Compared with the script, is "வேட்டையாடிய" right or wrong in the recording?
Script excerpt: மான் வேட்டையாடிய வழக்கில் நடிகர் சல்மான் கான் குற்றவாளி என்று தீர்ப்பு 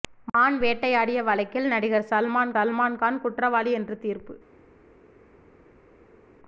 right